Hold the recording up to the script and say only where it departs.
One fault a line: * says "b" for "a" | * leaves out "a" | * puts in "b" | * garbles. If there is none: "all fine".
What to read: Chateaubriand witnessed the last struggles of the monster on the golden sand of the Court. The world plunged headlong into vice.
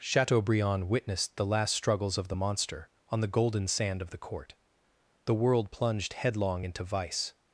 all fine